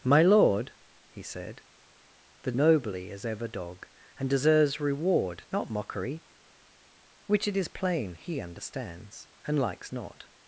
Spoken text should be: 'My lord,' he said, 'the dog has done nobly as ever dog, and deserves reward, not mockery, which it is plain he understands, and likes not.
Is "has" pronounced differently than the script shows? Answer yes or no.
yes